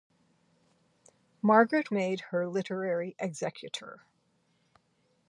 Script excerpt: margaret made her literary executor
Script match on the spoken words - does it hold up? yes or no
yes